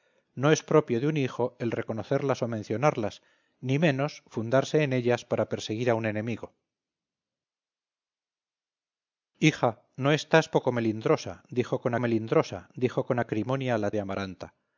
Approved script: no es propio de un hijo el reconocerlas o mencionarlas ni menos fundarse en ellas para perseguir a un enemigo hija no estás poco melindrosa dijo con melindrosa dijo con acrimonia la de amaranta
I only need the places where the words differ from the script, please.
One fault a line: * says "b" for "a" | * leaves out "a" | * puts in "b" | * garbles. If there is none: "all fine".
all fine